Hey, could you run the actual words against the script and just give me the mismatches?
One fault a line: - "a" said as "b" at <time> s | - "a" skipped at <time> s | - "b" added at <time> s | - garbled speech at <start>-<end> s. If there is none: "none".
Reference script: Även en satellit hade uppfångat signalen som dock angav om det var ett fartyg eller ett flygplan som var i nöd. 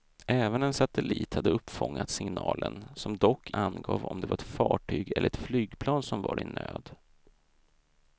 none